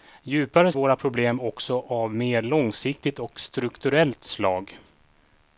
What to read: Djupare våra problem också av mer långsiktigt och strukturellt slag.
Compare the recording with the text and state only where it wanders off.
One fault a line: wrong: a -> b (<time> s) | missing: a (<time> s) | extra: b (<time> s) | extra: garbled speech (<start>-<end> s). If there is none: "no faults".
no faults